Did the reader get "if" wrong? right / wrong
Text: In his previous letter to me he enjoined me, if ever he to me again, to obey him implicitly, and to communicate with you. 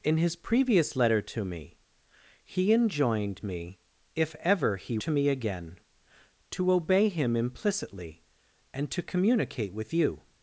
right